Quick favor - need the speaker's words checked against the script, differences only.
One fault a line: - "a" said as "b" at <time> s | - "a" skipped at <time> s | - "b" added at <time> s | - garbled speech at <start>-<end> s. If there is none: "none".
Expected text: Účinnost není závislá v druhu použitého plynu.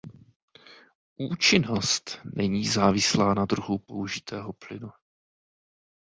- "v" said as "na" at 3.3 s